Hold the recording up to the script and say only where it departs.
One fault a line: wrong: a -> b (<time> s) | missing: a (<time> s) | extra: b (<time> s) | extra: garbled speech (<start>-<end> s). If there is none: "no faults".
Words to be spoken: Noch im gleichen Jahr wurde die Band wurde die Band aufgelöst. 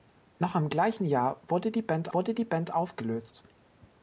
no faults